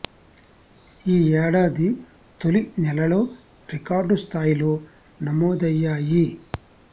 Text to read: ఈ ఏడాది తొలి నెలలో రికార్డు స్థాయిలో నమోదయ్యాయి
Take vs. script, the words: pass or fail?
pass